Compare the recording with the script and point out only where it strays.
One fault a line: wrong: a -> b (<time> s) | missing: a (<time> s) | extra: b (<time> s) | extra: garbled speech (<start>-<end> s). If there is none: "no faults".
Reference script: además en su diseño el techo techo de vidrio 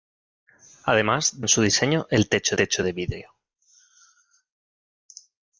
no faults